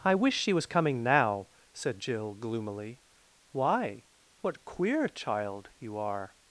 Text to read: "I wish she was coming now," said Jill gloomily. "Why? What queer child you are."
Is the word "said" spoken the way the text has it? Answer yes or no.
yes